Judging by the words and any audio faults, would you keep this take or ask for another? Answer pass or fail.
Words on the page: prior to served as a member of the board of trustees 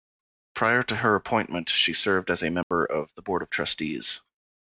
fail